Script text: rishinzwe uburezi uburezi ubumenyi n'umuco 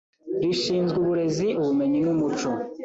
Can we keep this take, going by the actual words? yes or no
no